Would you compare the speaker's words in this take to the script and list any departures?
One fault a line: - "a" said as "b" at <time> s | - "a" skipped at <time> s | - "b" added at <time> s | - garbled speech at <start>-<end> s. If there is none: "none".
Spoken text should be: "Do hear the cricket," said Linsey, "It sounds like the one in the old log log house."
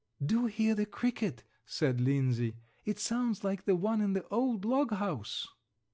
- "log" skipped at 4.9 s